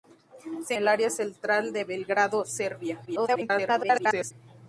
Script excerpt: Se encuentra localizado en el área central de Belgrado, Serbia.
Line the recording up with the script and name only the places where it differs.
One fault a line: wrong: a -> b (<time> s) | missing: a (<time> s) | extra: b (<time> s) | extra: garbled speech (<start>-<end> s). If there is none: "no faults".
missing: encuentra localizado en (0.7 s)
extra: garbled speech (3.1-4.3 s)